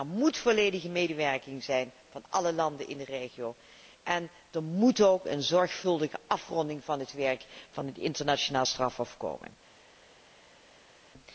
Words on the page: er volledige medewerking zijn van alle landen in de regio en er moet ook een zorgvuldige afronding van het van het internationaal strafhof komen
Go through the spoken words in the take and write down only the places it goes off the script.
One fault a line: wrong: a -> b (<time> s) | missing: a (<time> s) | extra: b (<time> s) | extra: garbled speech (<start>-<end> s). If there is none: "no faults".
extra: moet (0.1 s)
extra: werk (7.1 s)